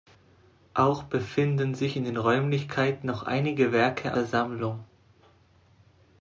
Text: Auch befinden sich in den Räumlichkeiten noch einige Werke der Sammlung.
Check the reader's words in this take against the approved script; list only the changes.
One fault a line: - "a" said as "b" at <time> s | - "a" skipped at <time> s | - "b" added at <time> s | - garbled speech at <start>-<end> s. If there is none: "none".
none